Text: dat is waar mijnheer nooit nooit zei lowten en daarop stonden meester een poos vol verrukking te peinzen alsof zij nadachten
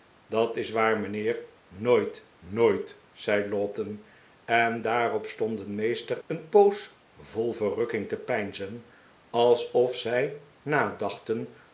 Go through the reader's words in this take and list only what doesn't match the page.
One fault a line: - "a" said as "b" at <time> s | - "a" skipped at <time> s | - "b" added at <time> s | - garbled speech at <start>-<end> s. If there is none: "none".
none